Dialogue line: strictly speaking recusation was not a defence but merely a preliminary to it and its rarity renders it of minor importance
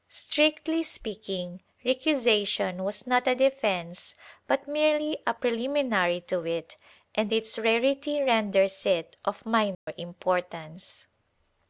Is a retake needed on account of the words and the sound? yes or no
yes